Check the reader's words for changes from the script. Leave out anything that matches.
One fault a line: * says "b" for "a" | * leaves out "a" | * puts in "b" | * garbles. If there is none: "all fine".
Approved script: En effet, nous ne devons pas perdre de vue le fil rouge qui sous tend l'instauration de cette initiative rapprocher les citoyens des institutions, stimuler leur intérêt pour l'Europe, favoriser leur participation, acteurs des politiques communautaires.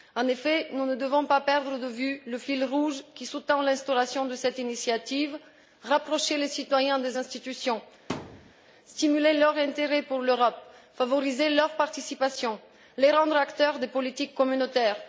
* puts in "les rendre"